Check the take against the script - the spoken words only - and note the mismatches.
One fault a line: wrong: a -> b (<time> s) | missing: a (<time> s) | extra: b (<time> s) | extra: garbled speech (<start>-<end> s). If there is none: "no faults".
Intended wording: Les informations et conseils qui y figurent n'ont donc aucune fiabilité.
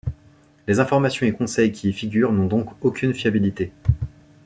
no faults